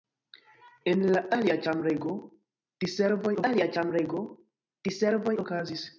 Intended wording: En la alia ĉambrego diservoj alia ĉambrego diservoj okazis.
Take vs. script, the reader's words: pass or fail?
pass